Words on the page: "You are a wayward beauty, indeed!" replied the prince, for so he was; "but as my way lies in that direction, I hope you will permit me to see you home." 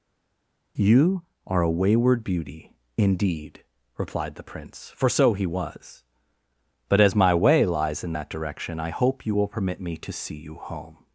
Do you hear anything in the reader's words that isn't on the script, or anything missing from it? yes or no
no